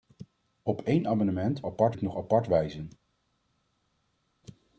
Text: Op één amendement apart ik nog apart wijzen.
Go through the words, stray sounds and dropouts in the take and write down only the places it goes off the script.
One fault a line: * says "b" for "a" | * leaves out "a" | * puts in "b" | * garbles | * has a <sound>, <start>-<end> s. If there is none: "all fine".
all fine